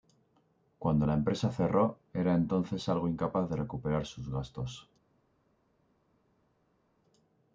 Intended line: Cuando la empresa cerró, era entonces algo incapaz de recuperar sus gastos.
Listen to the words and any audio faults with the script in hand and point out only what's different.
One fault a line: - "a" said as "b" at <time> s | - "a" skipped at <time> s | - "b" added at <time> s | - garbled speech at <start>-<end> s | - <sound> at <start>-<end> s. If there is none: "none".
none